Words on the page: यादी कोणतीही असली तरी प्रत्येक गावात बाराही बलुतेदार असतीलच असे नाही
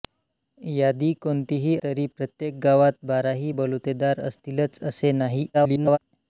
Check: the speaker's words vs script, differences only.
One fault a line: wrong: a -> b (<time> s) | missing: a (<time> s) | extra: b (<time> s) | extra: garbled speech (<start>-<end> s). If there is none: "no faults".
missing: असली (1.8 s)
extra: garbled speech (5.5-6.0 s)